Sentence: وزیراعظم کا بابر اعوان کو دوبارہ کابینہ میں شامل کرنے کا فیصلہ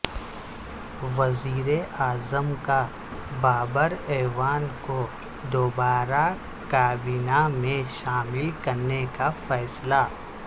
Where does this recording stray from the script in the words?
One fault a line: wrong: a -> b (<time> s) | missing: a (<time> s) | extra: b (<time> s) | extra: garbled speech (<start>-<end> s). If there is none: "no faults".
no faults